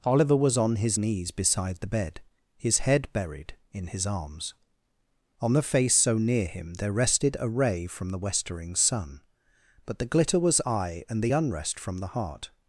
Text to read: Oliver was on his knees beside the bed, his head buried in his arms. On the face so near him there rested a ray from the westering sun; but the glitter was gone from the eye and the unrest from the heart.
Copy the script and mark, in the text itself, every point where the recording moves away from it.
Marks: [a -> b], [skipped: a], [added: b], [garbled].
Oliver was on his knees beside the bed, his head buried in his arms. On the face so near him there rested a ray from the westering sun; but the glitter was [skipped: gone from the] eye and the unrest from the heart.